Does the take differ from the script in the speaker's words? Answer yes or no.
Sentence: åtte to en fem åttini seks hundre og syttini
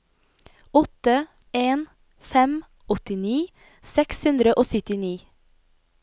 yes